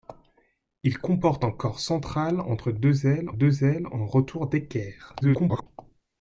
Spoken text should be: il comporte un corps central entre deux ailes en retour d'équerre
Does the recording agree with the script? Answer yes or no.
no